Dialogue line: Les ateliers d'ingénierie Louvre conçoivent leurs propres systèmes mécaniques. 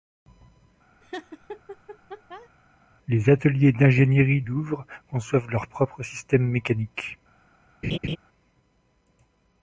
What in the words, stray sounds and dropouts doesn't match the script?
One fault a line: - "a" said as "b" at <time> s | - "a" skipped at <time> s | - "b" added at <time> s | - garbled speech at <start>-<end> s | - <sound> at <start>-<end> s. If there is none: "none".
- laugh at 1.0-2.5 s
- laugh at 7.8-8.2 s